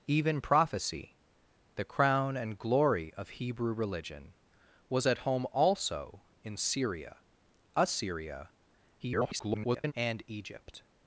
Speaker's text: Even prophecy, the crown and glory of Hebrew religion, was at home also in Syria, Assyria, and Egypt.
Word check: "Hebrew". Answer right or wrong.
right